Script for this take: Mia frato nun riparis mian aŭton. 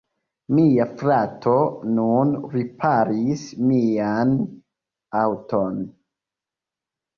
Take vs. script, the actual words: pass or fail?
pass